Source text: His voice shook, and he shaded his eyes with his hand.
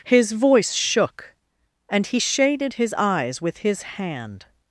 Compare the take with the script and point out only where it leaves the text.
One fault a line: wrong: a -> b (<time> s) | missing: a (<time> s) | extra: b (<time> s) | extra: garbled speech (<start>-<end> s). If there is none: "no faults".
no faults